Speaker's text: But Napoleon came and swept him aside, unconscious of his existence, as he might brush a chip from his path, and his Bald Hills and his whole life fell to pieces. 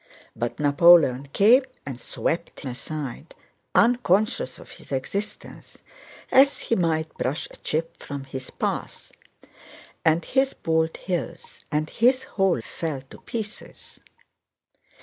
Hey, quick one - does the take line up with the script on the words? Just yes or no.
no